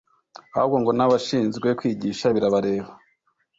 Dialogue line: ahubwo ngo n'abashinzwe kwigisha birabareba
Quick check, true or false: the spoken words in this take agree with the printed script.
true